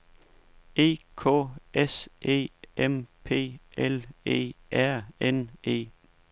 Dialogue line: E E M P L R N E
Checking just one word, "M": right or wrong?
right